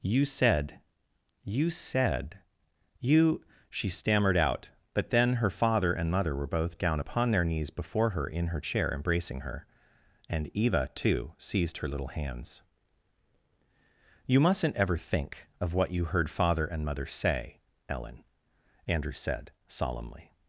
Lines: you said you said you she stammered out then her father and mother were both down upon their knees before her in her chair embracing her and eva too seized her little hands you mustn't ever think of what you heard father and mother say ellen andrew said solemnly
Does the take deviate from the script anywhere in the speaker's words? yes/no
yes